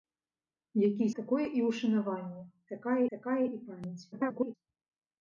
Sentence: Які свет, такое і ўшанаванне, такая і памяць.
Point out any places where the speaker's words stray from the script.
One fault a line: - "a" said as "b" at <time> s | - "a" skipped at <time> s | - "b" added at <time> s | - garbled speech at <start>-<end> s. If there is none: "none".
- "свет" skipped at 1.1 s
- "такая" added at 3.2 s
- garbled speech at 4.1-4.6 s